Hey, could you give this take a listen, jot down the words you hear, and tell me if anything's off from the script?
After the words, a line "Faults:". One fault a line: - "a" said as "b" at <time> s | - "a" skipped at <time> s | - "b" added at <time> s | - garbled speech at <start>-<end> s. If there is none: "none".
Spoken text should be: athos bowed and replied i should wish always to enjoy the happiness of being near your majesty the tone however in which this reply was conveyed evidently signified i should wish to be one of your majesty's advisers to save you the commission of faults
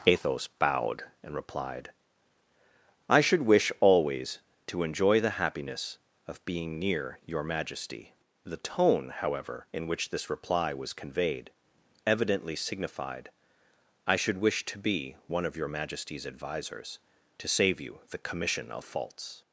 athos bowed and replied i should wish always to enjoy the happiness of being near your majesty the tone however in which this reply was conveyed evidently signified i should wish to be one of your majesty's advisers to save you the commission of faults
Faults:
none